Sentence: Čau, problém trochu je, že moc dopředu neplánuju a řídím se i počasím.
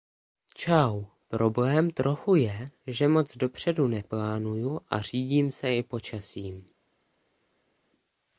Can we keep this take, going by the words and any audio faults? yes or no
yes